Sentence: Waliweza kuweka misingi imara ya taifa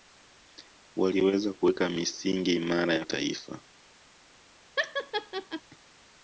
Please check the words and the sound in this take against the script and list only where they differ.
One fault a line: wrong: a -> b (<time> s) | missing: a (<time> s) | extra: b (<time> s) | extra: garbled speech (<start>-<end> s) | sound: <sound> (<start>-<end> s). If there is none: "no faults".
sound: laugh (4.8-5.6 s)